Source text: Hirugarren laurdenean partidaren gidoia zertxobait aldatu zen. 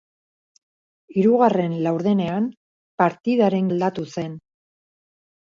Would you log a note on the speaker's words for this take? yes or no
yes